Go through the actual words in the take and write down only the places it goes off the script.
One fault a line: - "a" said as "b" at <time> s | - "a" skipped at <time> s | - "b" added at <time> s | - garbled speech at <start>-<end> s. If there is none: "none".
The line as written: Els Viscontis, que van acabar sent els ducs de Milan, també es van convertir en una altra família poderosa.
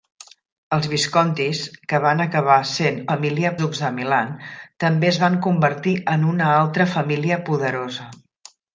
- "els" said as "família" at 3.1 s